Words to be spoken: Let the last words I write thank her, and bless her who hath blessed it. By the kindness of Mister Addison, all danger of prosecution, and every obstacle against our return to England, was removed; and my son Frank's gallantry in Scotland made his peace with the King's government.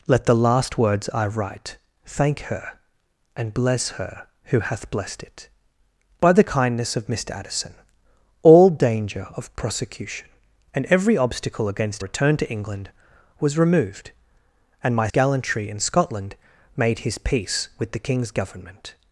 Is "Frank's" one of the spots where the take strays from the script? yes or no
yes